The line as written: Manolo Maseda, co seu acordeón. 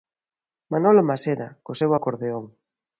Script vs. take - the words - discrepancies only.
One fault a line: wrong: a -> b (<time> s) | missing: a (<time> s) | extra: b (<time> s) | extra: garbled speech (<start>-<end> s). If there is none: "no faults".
no faults